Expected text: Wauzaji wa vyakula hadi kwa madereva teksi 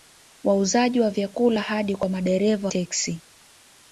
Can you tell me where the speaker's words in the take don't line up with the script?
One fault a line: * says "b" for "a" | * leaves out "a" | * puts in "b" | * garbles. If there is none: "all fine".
all fine